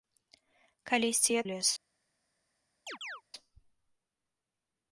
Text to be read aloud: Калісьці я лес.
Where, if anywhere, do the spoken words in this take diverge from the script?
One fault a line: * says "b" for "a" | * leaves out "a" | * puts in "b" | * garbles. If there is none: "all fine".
all fine